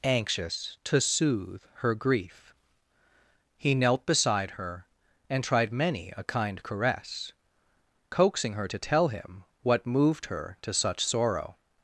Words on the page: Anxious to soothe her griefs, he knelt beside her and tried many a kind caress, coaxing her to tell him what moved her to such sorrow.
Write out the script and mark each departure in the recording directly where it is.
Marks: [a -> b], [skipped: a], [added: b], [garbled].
Anxious to soothe her [griefs, -> grief] he knelt beside her and tried many a kind caress, coaxing her to tell him what moved her to such sorrow.